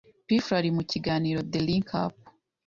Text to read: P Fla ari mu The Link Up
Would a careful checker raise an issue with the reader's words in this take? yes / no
yes